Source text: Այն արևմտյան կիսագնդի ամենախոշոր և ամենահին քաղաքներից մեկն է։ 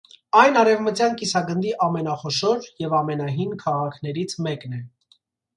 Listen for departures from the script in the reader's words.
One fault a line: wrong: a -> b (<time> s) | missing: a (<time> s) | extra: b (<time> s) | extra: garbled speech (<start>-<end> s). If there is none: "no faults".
no faults